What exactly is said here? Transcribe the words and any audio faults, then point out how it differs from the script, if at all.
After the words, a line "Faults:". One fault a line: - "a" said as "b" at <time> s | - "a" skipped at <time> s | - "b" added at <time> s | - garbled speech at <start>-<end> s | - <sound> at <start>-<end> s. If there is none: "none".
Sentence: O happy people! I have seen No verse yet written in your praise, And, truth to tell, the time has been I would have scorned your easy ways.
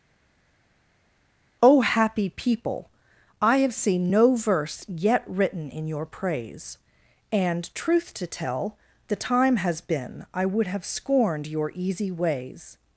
O happy people! I have seen No verse yet written in your praise, And, truth to tell, the time has been I would have scorned your easy ways.
Faults:
none